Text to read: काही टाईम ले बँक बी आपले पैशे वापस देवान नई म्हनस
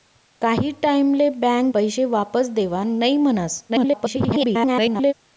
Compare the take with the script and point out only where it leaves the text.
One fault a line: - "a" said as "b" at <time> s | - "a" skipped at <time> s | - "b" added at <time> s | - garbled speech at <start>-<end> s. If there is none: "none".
- "बी आपले" skipped at 1.7 s
- garbled speech at 3.7-5.1 s